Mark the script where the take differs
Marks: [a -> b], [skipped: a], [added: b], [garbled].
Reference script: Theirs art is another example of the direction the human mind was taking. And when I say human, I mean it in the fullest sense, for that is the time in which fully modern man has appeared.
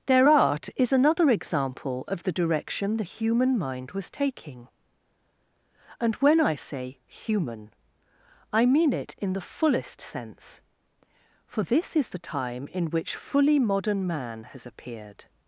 [Theirs -> Their] art is another example of the direction the human mind was taking. And when I say human, I mean it in the fullest sense, for [that -> this] is the time in which fully modern man has appeared.